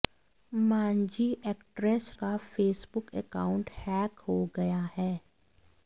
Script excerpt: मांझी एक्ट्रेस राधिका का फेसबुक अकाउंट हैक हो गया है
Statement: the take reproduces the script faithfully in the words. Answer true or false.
false